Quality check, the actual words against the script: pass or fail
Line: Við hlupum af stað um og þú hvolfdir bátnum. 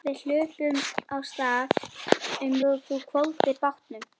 pass